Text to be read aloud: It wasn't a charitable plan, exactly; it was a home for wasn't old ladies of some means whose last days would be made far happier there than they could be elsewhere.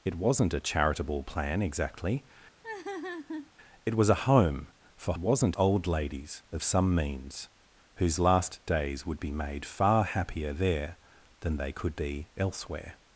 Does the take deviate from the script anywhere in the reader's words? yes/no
no